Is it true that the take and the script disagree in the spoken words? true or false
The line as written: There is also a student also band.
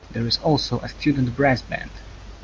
true